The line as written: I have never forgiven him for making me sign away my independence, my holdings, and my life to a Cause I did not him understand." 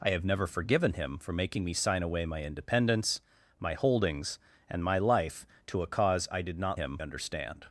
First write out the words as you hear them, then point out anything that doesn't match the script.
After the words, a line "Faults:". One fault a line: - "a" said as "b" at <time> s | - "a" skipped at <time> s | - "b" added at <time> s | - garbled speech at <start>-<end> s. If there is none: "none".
I have never forgiven him for making me sign away my independence, my holdings, and my life to a Cause I did not him understand."
Faults:
none